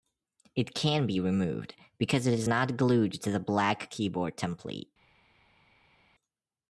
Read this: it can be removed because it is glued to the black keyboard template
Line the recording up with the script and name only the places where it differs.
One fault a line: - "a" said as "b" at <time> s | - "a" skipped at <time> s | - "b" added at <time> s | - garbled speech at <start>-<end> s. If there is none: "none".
- "not" added at 2.5 s